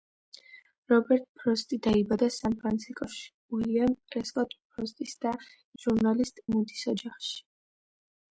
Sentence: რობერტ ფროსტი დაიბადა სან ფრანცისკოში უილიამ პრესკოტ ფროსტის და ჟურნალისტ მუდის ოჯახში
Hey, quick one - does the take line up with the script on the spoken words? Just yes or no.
yes